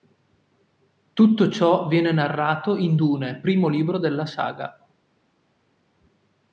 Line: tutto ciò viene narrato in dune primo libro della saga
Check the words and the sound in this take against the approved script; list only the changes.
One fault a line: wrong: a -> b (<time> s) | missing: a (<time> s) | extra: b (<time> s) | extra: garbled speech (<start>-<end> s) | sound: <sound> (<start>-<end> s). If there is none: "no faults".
no faults